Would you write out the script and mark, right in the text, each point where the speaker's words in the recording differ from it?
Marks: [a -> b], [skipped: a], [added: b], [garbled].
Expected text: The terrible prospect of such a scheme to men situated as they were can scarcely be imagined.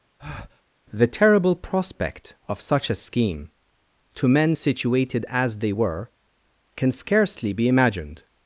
The terrible prospect of such a scheme to men situated as they were can scarcely be imagined.